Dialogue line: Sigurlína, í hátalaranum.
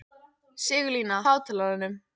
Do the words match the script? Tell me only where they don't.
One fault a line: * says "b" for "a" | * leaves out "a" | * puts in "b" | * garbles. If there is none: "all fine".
all fine